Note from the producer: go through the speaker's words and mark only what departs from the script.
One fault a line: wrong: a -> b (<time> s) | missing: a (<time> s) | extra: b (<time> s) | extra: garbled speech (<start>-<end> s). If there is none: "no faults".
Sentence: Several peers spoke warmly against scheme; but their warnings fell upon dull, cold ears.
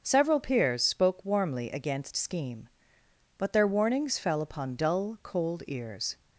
no faults